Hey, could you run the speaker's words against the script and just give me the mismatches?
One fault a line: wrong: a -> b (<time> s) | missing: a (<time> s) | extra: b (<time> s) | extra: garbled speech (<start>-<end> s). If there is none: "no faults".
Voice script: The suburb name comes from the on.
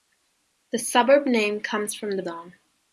no faults